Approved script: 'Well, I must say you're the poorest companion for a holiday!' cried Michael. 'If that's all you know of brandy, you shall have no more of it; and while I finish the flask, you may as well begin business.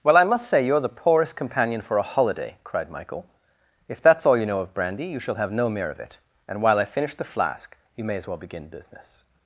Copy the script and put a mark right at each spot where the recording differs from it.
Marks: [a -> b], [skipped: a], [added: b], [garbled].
'Well, I must say you're the poorest companion for a holiday!' cried Michael. 'If that's all you know of brandy, you shall have no [more -> mere] of it; and while I finish the flask, you may as well begin business.